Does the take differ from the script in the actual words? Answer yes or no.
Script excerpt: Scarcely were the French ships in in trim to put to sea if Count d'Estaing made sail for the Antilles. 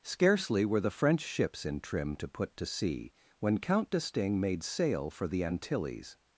yes